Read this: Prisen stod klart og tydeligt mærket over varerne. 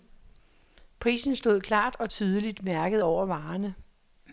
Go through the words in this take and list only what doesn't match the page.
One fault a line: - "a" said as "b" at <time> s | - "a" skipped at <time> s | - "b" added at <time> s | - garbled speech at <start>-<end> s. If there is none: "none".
none